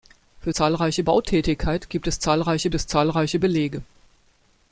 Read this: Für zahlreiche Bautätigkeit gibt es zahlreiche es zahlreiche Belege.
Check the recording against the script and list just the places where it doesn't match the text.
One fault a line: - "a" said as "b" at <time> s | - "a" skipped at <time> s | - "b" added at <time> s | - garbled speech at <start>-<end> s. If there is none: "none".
none